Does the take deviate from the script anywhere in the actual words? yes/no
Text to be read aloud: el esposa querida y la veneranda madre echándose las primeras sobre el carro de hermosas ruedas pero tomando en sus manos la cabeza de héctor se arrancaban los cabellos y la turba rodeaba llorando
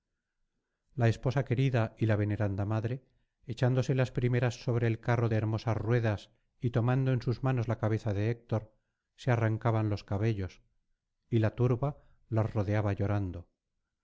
yes